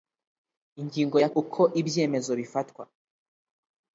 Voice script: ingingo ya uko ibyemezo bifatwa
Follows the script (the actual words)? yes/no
yes